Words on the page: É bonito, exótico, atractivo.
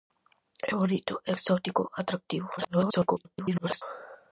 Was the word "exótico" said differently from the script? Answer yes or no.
no